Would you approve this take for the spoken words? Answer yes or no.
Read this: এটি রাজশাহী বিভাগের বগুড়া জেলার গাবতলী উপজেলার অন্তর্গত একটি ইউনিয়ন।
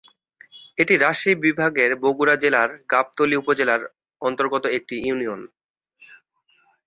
yes